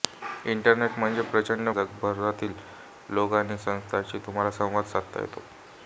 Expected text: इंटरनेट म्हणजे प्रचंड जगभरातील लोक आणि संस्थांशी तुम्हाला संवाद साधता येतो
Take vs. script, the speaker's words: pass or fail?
pass